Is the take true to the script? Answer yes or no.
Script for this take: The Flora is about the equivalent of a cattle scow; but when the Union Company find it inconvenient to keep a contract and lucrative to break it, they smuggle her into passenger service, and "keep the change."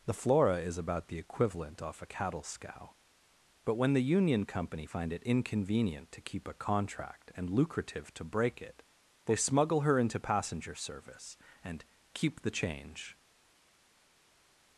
no